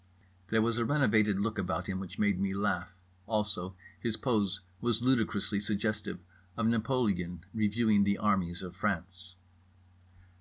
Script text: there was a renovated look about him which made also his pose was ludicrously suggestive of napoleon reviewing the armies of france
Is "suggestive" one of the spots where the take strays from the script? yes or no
no